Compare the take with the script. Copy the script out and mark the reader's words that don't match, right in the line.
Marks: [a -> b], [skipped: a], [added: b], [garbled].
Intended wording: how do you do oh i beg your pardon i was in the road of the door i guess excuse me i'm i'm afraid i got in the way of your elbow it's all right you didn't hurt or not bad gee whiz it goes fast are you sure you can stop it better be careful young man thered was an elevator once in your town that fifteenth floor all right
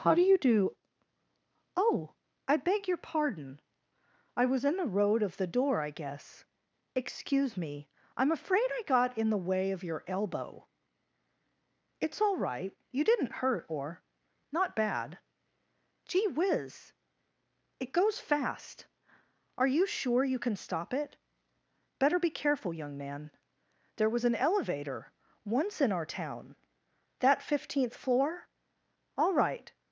how do you do oh i beg your pardon i was in the road of the door i guess excuse me i'm [skipped: i'm] afraid i got in the way of your elbow it's all right you didn't hurt or not bad gee whiz it goes fast are you sure you can stop it better be careful young man [thered -> there] was an elevator once in [your -> our] town that fifteenth floor all right